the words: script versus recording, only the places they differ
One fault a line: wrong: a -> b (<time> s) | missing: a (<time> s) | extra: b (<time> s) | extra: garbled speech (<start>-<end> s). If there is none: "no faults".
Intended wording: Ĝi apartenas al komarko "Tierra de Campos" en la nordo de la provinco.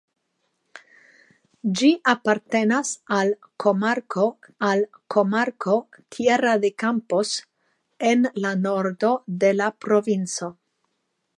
extra: al komarko (4.7 s)